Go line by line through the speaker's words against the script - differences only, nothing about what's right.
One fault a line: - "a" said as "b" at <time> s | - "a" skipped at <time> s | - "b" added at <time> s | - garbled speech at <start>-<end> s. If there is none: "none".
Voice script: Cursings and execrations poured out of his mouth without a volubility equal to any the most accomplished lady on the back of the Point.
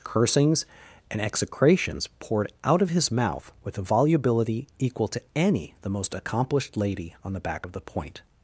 - "without" said as "with" at 3.6 s